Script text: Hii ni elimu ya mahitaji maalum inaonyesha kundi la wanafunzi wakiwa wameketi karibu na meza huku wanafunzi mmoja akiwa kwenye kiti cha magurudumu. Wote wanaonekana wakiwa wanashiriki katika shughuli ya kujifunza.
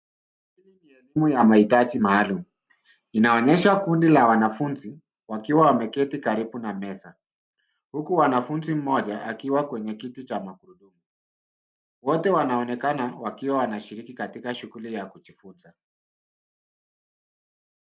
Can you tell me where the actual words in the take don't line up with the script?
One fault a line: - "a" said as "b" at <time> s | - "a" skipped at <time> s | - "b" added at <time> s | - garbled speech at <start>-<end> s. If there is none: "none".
none